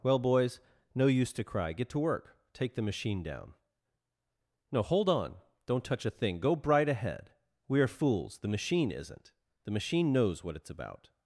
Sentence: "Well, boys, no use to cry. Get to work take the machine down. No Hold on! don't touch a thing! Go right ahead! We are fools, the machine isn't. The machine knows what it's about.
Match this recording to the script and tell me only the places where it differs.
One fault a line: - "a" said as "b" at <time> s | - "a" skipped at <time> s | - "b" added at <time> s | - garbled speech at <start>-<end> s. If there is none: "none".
- "right" said as "bright" at 6.5 s